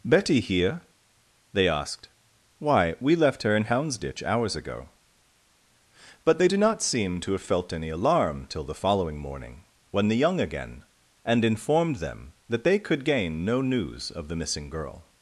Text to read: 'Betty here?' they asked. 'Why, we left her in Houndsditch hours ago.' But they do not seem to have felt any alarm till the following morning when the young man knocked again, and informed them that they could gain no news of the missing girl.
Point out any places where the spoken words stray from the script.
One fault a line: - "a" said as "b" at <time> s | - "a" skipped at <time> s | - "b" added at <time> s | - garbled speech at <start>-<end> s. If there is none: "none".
- "man knocked" skipped at 10.4 s